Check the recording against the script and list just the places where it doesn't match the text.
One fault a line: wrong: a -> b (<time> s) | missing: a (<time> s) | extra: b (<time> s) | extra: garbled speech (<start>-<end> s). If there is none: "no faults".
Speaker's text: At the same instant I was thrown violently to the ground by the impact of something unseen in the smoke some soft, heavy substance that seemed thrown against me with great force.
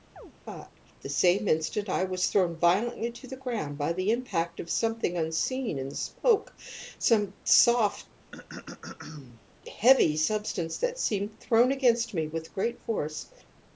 no faults